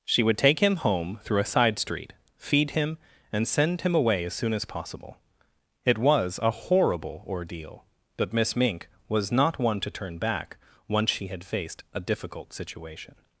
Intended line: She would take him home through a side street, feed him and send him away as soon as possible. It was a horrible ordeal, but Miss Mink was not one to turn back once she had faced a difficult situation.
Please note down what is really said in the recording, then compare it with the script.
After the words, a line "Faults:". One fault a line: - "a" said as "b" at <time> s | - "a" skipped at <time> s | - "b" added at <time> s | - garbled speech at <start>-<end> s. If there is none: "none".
She would take him home through a side street, feed him and send him away as soon as possible. It was a horrible ordeal, but Miss Mink was not one to turn back once she had faced a difficult situation.
Faults:
none